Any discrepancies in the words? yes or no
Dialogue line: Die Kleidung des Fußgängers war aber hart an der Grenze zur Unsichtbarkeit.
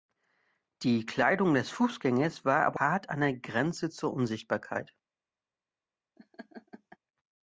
no